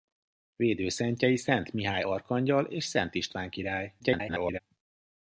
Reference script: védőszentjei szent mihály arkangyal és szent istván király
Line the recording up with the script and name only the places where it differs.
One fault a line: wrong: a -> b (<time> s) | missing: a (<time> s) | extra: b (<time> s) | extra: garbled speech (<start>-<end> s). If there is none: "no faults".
extra: garbled speech (4.0-4.6 s)